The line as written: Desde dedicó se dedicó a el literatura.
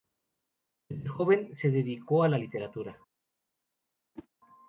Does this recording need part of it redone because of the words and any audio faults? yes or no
yes